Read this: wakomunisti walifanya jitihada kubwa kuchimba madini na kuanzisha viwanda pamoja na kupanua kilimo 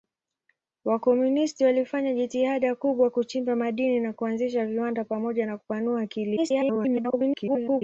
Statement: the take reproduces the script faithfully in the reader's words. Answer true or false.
false